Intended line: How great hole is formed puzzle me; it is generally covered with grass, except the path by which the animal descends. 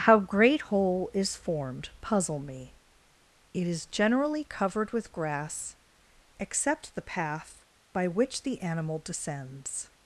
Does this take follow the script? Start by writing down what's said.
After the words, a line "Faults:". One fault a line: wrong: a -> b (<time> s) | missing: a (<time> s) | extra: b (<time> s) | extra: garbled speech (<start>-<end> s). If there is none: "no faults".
How great hole is formed puzzle me; it is generally covered with grass, except the path by which the animal descends.
Faults:
no faults